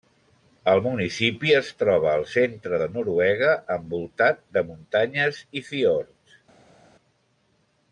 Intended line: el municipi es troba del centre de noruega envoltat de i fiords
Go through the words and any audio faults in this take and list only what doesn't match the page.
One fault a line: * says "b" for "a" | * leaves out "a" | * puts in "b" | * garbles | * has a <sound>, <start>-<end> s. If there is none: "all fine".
* says "al" for "del"
* puts in "muntanyes"